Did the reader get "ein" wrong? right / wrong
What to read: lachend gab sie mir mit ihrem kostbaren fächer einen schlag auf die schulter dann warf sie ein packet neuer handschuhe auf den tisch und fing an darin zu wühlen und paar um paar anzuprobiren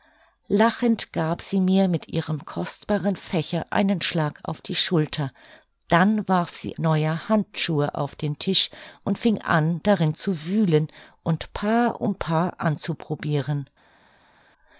wrong